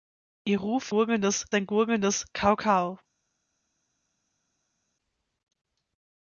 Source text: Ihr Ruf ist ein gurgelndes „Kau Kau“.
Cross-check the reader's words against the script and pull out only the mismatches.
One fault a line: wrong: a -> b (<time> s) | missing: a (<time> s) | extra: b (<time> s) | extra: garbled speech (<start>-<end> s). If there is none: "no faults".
wrong: ist -> gurgelndes (0.8 s)